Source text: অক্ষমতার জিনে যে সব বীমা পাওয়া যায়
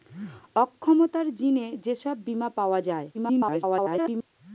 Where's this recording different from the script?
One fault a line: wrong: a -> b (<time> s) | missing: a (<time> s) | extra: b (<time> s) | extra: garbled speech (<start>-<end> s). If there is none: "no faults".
extra: garbled speech (3.1-4.3 s)